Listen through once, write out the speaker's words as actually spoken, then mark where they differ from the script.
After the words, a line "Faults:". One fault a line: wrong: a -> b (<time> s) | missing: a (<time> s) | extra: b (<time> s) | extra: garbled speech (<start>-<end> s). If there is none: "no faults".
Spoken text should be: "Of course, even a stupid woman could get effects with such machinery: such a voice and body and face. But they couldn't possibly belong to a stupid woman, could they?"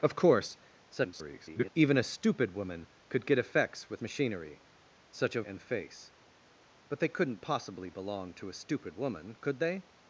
"Of course, [garbled] even a stupid woman could get effects with machinery: such a and face. But they couldn't possibly belong to a stupid woman, could they?"
Faults:
extra: garbled speech (0.9-1.7 s)
missing: such (4.0 s)
missing: voice and body (5.4 s)